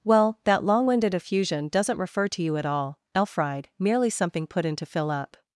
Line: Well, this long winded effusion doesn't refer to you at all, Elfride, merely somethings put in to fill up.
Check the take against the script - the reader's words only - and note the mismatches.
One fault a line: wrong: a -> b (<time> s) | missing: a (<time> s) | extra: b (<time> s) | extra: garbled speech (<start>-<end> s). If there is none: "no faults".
wrong: this -> that (0.5 s)
wrong: somethings -> something (4.1 s)